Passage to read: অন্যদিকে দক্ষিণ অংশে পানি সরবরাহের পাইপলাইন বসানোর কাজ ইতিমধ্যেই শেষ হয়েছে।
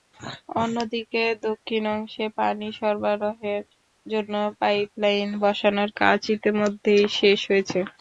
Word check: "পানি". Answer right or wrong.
right